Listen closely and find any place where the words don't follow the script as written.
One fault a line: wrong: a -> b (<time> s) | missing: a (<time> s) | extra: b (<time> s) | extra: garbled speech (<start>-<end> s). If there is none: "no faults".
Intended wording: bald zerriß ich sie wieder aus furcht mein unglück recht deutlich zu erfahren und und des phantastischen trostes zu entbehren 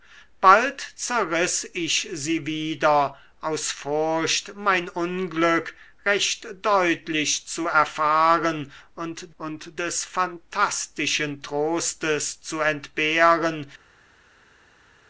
no faults